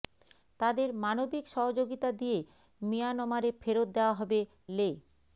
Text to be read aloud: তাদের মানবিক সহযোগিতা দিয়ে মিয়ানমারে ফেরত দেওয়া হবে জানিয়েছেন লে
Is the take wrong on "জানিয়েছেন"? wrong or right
wrong